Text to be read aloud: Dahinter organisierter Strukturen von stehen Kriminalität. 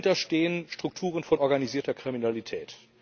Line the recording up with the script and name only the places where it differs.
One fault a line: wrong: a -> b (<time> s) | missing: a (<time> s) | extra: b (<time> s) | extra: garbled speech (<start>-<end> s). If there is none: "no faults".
wrong: organisierter -> stehen (0.2 s)
wrong: stehen -> organisierter (1.4 s)